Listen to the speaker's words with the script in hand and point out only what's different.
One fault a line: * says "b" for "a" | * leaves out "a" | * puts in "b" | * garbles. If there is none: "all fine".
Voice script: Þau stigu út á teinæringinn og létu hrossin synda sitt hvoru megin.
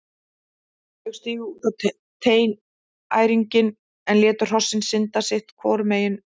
* says "en" for "og"